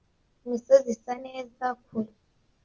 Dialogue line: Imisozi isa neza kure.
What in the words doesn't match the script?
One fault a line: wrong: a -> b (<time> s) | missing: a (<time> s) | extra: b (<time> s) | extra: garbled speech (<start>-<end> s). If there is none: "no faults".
no faults